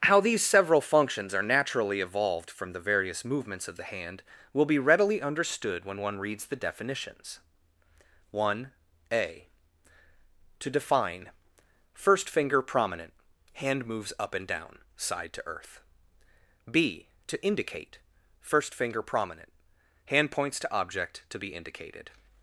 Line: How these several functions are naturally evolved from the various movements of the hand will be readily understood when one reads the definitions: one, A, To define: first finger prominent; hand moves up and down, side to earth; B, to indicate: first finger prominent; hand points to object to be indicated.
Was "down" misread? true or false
false